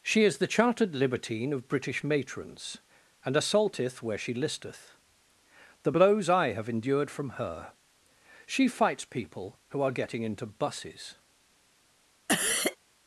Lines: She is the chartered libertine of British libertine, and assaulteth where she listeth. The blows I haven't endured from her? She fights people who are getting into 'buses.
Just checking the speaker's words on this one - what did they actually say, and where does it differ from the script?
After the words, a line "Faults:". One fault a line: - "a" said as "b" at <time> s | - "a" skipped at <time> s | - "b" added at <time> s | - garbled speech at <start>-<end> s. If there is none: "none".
She is the chartered libertine of British matrons, and assaulteth where she listeth. The blows I have endured from her? She fights people who are getting into 'buses.
Faults:
- "libertine" said as "matrons" at 2.0 s
- "haven't" said as "have" at 6.5 s